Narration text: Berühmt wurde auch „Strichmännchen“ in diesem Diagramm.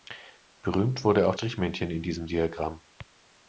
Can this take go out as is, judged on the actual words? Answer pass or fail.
pass